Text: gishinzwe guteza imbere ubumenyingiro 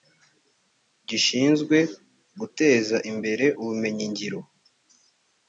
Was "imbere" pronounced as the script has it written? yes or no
yes